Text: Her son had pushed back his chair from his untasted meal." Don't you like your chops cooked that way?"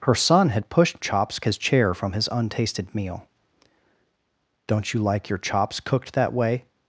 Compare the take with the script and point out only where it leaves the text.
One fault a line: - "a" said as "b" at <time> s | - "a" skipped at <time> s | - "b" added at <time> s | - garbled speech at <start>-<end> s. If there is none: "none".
- "back" said as "chops" at 1.0 s